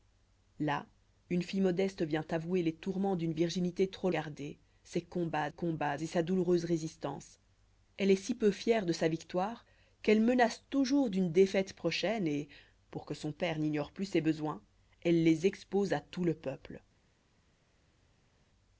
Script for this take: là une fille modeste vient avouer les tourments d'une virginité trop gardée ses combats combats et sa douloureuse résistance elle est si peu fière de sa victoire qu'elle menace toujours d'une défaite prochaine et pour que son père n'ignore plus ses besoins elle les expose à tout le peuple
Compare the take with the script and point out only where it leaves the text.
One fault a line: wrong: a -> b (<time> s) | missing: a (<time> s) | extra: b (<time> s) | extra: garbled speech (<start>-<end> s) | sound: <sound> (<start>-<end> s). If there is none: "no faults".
no faults